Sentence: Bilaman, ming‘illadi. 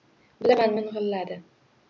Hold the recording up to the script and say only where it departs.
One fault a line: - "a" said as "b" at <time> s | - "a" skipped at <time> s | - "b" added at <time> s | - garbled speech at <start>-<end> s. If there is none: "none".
none